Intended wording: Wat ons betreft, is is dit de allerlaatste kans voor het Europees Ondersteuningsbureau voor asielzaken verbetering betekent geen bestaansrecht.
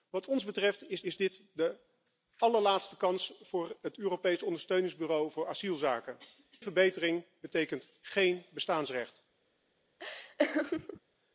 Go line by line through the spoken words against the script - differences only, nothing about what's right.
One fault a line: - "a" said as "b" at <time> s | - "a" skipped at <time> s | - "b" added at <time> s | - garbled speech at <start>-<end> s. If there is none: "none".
none